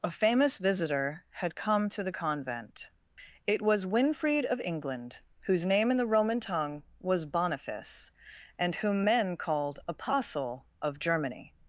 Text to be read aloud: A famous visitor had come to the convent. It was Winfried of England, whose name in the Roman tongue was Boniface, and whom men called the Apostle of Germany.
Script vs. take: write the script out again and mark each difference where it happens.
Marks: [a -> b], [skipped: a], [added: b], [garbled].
A famous visitor had come to the convent. It was Winfried of England, whose name in the Roman tongue was Boniface, and whom men called [skipped: the] Apostle of Germany.